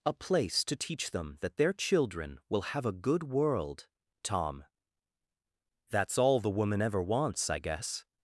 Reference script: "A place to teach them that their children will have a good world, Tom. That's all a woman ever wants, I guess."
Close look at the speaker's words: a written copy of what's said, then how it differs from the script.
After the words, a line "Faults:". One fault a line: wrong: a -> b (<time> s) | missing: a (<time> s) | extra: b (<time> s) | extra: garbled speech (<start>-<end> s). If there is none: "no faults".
"A place to teach them that their children will have a good world, Tom. That's all the woman ever wants, I guess."
Faults:
wrong: a -> the (6.4 s)